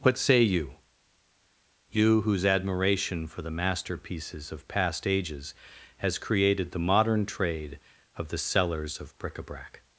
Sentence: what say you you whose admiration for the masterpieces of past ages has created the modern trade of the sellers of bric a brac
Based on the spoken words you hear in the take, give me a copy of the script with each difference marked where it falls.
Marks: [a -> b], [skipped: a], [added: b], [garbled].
what say you you whose admiration for the masterpieces of past ages has created the modern trade of the sellers of bric a brac